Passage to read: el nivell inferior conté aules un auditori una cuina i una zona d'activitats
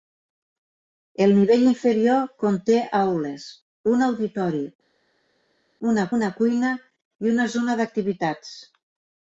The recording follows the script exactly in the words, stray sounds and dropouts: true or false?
false